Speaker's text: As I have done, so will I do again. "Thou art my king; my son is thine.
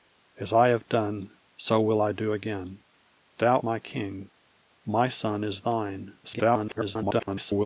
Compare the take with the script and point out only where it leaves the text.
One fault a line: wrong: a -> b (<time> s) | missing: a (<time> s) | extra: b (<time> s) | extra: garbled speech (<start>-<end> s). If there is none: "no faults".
missing: art (3.6 s)
extra: garbled speech (6.2-7.7 s)